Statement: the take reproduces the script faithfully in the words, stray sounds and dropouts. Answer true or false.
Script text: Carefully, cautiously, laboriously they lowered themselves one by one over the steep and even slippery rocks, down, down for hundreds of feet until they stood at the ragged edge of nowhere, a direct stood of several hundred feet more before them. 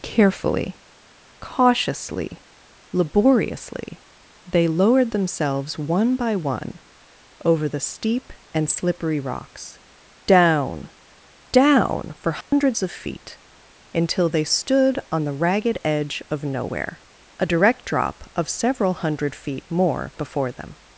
false